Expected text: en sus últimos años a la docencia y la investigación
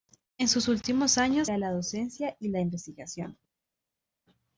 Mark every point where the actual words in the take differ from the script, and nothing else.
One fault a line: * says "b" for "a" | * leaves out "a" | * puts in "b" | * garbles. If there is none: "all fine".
all fine